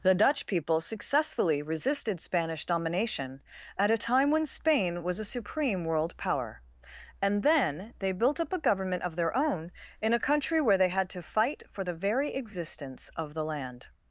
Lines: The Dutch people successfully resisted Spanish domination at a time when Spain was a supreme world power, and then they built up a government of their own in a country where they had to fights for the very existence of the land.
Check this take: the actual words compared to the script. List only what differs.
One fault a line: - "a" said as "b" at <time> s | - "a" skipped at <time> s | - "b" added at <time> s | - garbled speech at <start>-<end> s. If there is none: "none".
- "fights" said as "fight" at 11.2 s